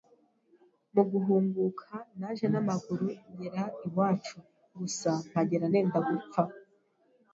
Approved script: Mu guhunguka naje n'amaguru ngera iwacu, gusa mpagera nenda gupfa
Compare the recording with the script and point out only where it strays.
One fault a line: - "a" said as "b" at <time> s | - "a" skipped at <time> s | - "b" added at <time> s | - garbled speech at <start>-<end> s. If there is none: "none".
none